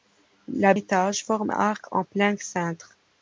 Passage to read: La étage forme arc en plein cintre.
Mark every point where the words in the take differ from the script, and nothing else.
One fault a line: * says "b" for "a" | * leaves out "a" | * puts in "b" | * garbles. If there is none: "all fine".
all fine